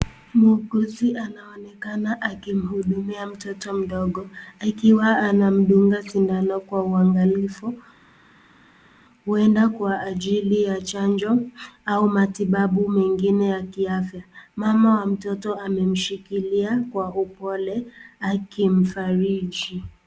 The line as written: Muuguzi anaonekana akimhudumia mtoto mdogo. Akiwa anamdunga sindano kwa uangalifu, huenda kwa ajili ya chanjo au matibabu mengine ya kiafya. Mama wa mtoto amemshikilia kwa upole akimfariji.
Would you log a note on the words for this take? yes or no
no